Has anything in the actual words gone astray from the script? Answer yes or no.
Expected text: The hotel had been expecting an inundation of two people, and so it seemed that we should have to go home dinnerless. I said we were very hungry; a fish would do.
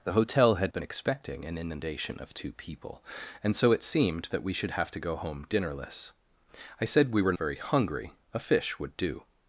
no